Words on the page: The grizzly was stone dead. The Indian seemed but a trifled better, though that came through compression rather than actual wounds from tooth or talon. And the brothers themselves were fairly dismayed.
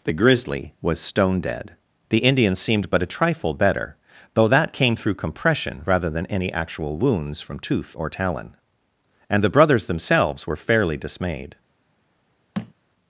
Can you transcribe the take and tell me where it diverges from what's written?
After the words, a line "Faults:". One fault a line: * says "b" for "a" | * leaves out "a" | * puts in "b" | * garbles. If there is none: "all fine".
The grizzly was stone dead. The Indian seemed but a trifle better, though that came through compression rather than any actual wounds from tooth or talon. And the brothers themselves were fairly dismayed.
Faults:
* says "trifle" for "trifled"
* puts in "any"